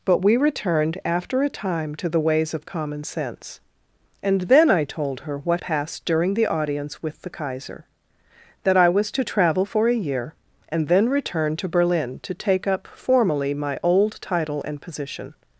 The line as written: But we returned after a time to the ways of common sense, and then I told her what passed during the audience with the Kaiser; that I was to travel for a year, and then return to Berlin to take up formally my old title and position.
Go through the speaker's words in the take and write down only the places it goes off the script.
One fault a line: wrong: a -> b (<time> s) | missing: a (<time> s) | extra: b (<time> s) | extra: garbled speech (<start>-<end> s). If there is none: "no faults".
no faults